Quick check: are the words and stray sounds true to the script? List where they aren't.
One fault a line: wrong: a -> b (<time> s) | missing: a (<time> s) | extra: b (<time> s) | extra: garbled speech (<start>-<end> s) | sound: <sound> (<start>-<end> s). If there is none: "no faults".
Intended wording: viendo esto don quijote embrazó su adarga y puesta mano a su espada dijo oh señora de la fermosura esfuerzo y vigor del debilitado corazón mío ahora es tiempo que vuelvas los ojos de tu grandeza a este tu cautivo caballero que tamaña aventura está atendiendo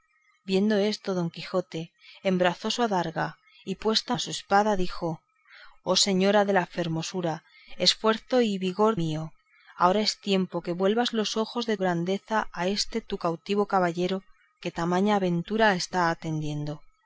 missing: mano (4.1 s)
missing: del debilitado corazón (9.0 s)
missing: tu (11.8 s)